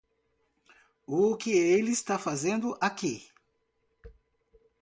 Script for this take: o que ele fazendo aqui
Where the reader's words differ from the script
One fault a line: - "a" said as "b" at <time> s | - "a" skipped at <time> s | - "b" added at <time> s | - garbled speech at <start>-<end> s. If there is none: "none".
- "está" added at 1.9 s